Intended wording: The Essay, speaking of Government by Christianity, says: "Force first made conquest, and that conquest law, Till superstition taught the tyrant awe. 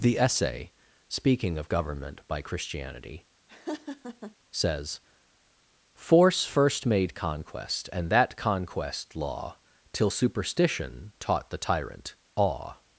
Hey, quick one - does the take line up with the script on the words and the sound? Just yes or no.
no